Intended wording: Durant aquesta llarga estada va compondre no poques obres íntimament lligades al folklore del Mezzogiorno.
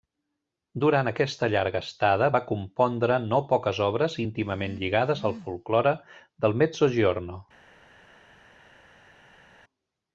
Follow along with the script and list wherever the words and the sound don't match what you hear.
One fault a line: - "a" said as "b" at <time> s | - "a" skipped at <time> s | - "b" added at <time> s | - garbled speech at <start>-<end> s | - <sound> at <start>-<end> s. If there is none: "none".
none